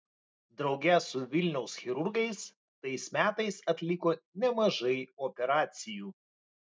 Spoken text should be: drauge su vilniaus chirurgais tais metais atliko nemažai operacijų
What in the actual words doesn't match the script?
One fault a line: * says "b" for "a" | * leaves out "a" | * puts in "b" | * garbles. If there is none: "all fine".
all fine